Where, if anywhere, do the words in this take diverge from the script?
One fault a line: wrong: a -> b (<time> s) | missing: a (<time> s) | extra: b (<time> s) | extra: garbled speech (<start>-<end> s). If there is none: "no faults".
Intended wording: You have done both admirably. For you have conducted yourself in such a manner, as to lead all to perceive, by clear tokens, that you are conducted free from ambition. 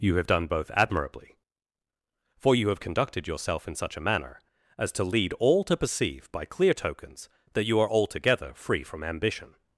wrong: conducted -> altogether (7.9 s)